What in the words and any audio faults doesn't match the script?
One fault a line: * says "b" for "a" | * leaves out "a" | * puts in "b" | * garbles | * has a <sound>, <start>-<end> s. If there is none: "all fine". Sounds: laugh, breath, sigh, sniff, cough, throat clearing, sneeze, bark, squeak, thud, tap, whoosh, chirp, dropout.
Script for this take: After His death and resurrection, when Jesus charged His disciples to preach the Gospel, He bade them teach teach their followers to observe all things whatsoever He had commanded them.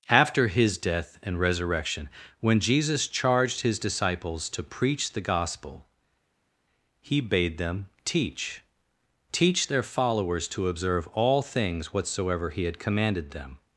all fine